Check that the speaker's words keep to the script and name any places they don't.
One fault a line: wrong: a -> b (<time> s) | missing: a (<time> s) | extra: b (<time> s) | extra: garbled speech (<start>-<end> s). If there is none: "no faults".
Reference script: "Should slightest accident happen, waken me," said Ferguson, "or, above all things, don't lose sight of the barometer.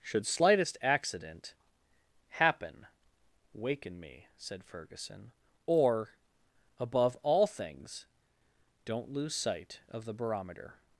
no faults